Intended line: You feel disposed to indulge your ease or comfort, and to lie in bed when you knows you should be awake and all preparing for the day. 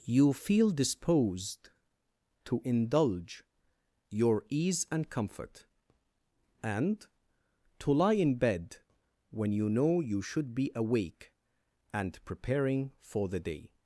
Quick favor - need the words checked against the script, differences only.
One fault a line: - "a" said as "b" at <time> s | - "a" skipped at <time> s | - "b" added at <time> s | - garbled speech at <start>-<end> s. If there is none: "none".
- "or" said as "and" at 4.9 s
- "knows" said as "know" at 9.7 s
- "all" skipped at 12.2 s